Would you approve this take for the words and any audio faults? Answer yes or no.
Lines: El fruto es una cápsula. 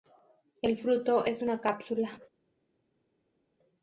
yes